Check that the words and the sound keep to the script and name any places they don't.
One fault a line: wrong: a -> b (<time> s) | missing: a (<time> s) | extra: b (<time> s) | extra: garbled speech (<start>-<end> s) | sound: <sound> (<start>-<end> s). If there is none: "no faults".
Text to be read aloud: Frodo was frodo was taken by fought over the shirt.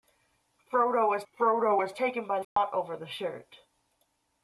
sound: dropout (2.4-2.6 s)